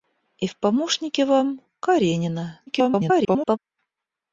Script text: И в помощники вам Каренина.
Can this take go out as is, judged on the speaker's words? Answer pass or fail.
fail